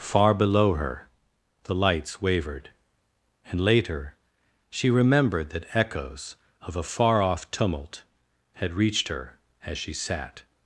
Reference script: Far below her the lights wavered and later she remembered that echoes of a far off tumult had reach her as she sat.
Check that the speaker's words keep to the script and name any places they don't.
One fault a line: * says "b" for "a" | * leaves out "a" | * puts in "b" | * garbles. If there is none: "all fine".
* says "reached" for "reach"